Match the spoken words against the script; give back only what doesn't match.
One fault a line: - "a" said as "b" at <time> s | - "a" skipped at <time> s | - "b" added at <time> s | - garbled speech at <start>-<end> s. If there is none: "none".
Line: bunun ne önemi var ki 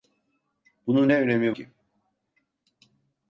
- "var" skipped at 1.5 s